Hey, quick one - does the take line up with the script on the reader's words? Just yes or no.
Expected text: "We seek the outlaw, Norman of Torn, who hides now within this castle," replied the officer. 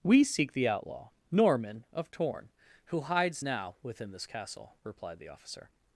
yes